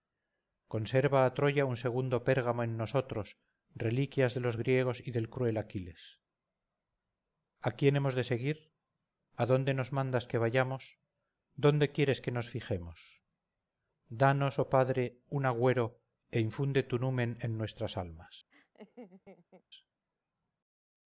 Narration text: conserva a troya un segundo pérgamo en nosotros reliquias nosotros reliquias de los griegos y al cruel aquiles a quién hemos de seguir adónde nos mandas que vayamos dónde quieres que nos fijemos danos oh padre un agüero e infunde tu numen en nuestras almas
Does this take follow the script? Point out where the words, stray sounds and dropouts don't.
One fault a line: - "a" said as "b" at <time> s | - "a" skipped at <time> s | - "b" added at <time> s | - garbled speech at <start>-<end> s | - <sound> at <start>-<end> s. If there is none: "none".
- "nosotros reliquias" skipped at 4.3 s
- "al" said as "del" at 5.2 s
- laugh at 18.5-19.6 s